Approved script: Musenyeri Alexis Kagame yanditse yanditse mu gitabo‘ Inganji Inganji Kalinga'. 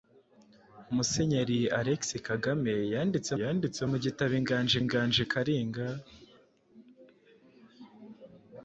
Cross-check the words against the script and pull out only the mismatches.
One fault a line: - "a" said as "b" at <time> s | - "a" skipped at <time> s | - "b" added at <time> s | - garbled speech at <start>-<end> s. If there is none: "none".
none